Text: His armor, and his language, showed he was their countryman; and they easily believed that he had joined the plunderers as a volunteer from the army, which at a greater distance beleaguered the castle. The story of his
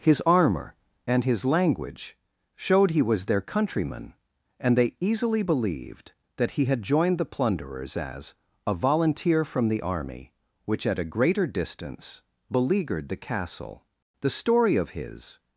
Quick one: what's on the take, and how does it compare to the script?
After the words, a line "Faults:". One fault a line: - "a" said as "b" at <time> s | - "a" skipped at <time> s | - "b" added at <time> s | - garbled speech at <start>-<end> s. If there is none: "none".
His armor, and his language, showed he was their countryman; and they easily believed that he had joined the plunderers as a volunteer from the army, which at a greater distance beleaguered the castle. The story of his
Faults:
none